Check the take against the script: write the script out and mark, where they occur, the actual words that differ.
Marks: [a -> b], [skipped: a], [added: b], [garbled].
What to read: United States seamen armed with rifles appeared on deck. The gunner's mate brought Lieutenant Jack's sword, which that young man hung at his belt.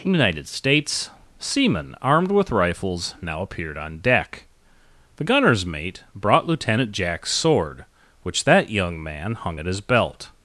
United States seamen armed with rifles [added: now] appeared on deck. The gunner's mate brought Lieutenant Jack's sword, which that young man hung at his belt.